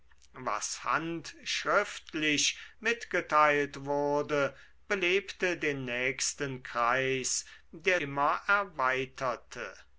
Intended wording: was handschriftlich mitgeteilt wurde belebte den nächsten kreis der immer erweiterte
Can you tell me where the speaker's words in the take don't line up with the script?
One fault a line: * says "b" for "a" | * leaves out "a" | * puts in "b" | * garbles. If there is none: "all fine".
all fine